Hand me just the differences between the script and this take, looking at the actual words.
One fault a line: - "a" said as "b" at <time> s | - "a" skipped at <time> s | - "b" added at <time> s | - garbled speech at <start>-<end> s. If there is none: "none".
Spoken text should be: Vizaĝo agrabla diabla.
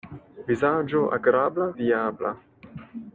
none